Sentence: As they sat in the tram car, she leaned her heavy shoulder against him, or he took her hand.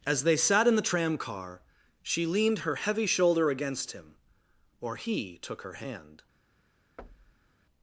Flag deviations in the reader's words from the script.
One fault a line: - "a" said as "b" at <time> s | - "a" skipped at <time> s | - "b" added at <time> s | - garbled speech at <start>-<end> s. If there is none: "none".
none